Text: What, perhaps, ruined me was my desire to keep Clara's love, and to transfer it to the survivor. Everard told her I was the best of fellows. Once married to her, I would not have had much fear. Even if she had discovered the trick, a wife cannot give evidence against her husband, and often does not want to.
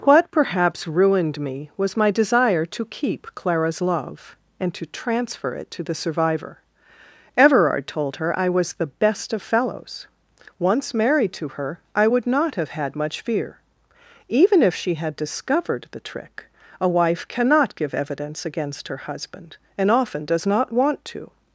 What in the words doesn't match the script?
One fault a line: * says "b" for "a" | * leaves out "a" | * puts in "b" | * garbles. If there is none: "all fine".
all fine